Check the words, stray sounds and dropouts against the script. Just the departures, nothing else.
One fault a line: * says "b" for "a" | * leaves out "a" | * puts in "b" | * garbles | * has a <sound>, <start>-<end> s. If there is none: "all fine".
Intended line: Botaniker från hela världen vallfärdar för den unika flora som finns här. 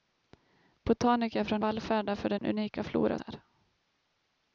* leaves out "hela världen"
* has a dropout, 2.4-2.4 s
* leaves out "som finns"